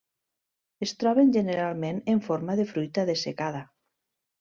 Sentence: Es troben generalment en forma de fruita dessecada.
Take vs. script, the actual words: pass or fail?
pass